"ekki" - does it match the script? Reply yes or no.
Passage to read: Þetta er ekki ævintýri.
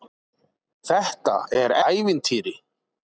no